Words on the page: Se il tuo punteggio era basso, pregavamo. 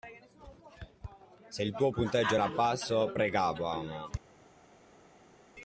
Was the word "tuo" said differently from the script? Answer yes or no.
no